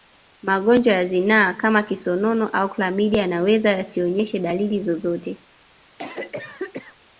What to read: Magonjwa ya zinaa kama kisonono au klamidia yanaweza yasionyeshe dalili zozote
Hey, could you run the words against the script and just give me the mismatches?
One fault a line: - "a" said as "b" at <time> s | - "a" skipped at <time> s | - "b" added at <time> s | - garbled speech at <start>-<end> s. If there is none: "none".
none